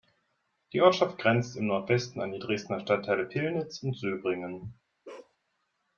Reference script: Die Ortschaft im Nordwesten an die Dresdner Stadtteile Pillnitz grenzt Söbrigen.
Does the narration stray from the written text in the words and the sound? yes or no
yes